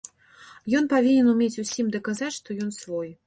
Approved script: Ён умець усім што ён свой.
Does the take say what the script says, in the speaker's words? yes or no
no